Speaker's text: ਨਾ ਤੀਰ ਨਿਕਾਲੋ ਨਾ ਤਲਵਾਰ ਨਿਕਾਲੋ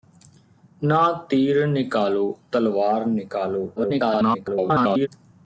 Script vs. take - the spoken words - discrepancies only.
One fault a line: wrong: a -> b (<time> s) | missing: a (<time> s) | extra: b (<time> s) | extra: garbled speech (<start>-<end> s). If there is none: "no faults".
missing: ਨਾ (2.4 s)
extra: garbled speech (3.8-5.1 s)